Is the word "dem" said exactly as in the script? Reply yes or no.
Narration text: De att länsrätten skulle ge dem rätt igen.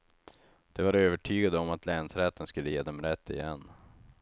yes